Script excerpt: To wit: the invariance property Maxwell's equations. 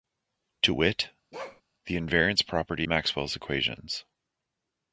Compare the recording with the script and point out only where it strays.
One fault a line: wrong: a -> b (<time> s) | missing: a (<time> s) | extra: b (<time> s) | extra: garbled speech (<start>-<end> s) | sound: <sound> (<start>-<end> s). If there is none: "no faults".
sound: bark (1.3-1.6 s)